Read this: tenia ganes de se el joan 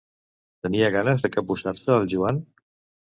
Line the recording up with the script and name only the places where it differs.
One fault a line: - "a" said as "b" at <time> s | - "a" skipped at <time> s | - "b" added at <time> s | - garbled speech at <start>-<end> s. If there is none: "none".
- "capbussar" added at 1.4 s